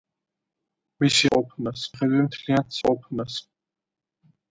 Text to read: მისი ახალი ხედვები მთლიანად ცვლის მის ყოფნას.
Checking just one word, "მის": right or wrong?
wrong